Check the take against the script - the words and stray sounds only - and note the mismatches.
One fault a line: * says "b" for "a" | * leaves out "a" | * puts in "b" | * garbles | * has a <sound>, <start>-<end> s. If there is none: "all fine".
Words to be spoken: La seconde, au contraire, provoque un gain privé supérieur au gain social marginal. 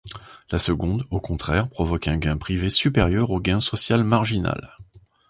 all fine